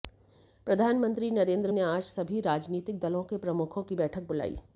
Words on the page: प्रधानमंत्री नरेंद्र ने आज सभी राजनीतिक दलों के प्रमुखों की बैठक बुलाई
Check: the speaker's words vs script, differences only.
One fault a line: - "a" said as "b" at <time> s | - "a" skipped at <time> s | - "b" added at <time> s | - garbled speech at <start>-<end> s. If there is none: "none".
none